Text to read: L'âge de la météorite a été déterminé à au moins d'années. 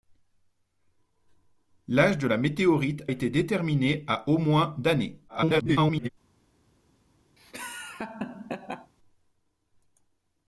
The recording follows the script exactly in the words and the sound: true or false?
false